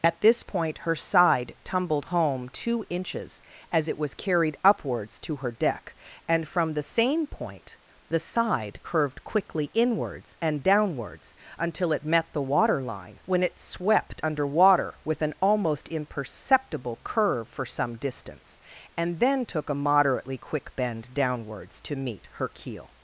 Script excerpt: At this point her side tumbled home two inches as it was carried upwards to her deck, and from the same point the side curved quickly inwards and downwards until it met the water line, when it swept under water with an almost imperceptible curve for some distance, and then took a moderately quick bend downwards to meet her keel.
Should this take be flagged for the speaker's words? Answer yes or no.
no